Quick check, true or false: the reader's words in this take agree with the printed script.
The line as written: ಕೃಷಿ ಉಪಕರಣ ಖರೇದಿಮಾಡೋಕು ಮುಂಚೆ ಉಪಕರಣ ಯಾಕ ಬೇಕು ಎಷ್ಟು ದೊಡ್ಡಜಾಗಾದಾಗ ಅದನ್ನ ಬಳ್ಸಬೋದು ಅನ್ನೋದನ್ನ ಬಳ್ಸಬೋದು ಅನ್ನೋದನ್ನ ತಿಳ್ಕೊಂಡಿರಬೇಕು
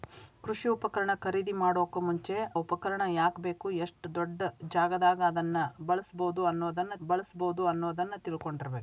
true